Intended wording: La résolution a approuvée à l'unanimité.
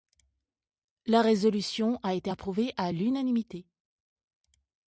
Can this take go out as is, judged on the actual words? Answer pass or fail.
fail